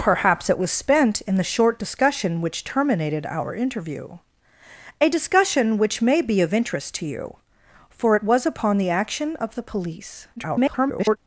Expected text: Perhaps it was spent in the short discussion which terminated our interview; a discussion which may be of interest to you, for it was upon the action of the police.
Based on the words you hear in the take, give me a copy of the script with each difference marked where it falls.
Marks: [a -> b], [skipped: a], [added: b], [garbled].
Perhaps it was spent in the short discussion which terminated our interview; a discussion which may be of interest to you, for it was upon the action of the police. [garbled]